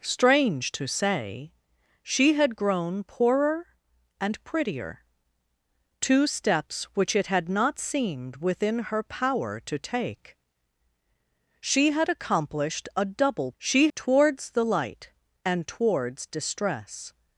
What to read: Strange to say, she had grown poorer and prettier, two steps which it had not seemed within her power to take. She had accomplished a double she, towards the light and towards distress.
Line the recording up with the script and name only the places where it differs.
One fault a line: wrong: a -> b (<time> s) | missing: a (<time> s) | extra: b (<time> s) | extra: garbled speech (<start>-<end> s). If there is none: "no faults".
no faults